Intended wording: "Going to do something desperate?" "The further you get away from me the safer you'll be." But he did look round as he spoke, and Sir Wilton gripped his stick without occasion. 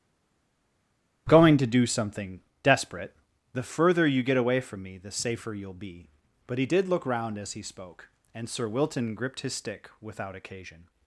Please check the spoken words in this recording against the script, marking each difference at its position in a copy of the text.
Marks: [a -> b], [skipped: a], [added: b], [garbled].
"Going to do something desperate?" "The further you get away from me the safer you'll be." But he did look round as he spoke, and Sir Wilton gripped his stick without occasion.